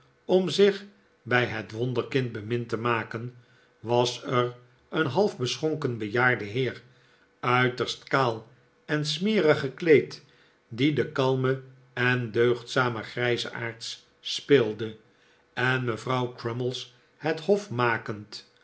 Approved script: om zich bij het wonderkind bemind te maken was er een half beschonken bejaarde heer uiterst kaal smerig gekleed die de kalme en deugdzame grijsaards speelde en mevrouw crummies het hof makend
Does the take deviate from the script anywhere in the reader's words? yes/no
yes